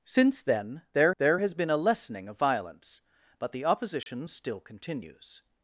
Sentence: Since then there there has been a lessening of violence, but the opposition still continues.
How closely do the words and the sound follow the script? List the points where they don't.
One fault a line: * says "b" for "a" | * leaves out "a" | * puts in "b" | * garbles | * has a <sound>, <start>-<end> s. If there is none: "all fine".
* has a dropout, 4.0-4.1 s